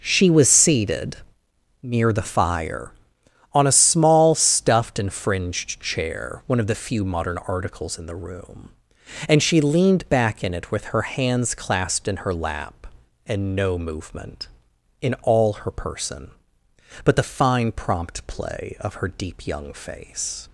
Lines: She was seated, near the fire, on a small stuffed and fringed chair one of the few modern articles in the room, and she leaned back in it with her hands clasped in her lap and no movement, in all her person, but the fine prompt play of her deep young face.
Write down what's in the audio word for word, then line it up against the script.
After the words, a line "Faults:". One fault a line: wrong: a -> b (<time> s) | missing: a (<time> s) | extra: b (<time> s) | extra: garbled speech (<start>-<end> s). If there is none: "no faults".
She was seated, near the fire, on a small stuffed and fringed chair one of the few modern articles in the room, and she leaned back in it with her hands clasped in her lap and no movement, in all her person, but the fine prompt play of her deep young face.
Faults:
no faults